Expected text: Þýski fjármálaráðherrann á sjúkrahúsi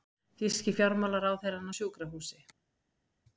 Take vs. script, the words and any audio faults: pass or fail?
pass